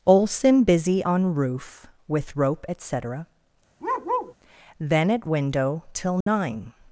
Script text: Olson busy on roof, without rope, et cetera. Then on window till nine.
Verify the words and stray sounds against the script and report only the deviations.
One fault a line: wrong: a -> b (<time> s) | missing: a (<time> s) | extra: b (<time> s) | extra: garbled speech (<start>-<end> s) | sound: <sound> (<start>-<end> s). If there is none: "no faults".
wrong: without -> with (2.1 s)
sound: bark (3.8-4.3 s)
wrong: on -> at (5.1 s)
sound: dropout (6.2-6.3 s)